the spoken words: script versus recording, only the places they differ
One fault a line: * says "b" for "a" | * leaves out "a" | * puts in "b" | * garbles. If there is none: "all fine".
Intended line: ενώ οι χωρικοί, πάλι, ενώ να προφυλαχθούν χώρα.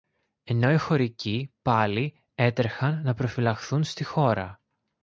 * says "έτρεχαν" for "ενώ"
* puts in "στη"